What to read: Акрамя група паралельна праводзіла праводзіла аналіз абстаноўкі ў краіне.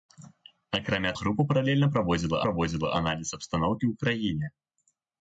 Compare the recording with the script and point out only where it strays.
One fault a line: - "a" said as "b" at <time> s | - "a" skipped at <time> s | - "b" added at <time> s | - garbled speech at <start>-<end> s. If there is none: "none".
none